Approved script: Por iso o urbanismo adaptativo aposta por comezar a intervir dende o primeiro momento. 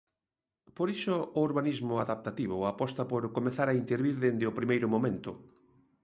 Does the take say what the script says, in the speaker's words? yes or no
yes